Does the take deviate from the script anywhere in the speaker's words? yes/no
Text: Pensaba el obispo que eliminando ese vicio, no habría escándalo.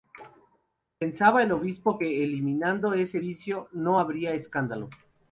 no